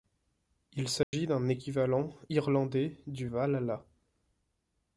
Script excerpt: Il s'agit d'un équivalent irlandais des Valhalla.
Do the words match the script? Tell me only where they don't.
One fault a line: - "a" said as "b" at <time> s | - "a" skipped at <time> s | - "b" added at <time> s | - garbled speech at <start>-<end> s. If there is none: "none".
- "des" said as "du" at 3.1 s